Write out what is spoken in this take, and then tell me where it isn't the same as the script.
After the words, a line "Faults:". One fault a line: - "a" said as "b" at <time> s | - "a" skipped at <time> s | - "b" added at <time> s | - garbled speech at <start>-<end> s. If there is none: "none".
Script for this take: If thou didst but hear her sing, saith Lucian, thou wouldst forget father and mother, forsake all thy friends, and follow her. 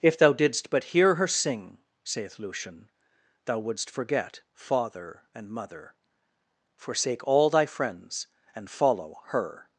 If thou didst but hear her sing, saith Lucian, thou wouldst forget father and mother, forsake all thy friends, and follow her.
Faults:
none